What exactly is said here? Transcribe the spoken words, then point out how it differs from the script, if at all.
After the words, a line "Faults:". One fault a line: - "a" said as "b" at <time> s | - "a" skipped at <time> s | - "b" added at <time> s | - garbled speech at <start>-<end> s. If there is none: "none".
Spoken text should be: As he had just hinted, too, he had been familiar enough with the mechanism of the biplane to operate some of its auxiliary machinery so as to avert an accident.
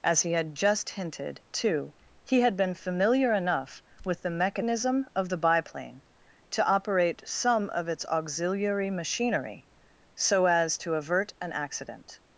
As he had just hinted, too, he had been familiar enough with the mechanism of the biplane to operate some of its auxiliary machinery so as to avert an accident.
Faults:
none